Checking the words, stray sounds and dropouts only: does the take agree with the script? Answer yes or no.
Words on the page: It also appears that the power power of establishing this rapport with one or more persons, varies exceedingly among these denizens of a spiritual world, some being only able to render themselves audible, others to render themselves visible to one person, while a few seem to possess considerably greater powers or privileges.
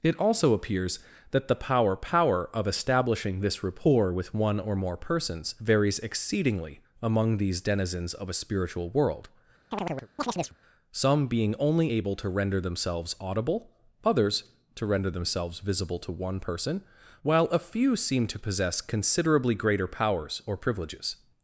no